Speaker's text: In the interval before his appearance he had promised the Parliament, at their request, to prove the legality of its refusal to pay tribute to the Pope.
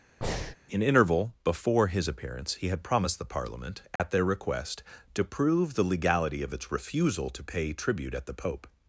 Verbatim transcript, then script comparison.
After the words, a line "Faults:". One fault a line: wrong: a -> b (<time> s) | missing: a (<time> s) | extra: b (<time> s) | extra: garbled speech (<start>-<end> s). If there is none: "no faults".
In interval before his appearance he had promised the Parliament, at their request, to prove the legality of its refusal to pay tribute at the Pope.
Faults:
missing: the (0.8 s)
wrong: to -> at (8.1 s)